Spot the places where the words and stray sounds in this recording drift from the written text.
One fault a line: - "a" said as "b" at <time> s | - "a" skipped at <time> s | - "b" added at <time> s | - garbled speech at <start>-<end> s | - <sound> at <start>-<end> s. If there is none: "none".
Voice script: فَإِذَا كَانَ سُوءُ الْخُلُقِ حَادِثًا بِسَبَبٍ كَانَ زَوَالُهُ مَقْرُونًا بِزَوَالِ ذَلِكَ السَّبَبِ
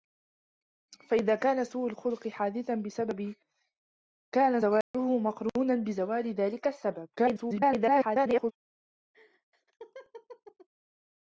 - dropout at 4.8-4.9 s
- garbled speech at 7.2-8.5 s
- laugh at 9.1-10.7 s